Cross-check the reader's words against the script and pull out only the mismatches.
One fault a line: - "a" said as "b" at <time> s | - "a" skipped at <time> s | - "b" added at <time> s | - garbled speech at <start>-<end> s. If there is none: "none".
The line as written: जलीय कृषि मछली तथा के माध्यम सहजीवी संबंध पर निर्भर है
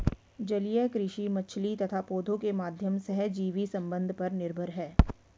- "पौधों" added at 2.1 s